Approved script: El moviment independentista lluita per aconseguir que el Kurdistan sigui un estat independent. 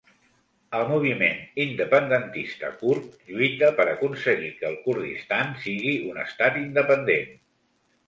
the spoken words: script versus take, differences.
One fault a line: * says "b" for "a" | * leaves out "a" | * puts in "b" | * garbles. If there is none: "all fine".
* puts in "kurd"